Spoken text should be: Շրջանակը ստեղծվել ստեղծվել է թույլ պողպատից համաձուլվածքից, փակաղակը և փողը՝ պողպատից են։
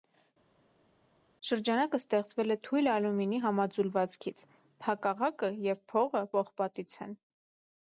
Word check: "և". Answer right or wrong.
right